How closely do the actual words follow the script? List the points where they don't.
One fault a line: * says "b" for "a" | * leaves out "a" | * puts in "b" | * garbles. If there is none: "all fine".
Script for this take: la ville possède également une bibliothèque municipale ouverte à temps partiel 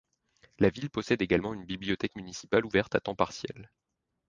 all fine